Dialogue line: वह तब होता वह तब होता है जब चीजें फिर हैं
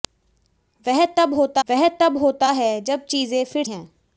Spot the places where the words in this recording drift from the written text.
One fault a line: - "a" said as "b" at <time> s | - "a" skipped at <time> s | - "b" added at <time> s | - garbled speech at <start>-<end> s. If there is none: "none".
none